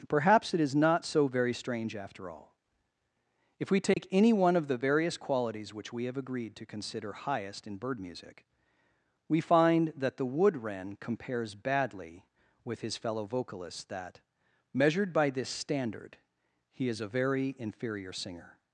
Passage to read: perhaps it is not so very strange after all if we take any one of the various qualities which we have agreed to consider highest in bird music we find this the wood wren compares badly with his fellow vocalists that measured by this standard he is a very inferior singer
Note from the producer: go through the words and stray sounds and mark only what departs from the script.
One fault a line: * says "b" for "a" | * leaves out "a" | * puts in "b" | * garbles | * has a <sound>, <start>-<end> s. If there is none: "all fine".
* has a dropout, 3.9-4.0 s
* says "that" for "this"